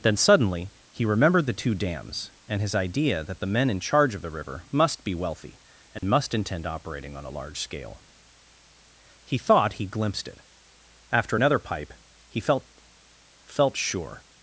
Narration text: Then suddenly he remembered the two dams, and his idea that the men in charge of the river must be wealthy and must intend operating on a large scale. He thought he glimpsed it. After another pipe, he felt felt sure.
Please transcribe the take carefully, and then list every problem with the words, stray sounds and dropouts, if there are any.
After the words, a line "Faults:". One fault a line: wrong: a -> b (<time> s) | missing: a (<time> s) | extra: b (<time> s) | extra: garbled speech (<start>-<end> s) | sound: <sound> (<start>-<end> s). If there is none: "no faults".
Then suddenly he remembered the two dams, and his idea that the men in charge of the river must be wealthy and must intend operating on a large scale. He thought he glimpsed it. After another pipe, he felt felt sure.
Faults:
sound: dropout (6.0-6.0 s)